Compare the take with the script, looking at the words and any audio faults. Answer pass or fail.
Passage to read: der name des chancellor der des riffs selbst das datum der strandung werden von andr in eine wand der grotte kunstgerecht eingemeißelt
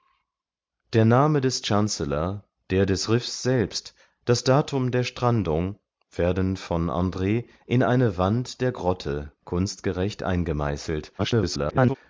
fail